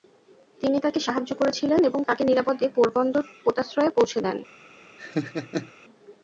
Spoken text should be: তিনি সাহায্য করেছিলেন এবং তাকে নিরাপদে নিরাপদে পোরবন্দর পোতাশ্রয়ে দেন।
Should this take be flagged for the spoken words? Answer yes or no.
yes